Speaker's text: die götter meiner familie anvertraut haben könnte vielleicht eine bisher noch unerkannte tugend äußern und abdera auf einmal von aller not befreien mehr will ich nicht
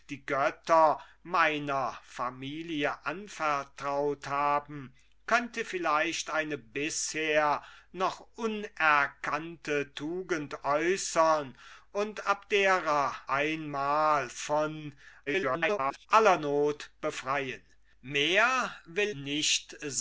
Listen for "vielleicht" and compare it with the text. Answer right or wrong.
right